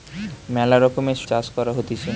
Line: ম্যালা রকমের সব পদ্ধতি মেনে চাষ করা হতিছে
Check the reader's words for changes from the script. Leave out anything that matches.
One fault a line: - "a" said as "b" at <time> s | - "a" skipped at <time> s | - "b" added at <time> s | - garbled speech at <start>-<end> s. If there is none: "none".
- "সব পদ্ধতি মেনে" skipped at 1.2 s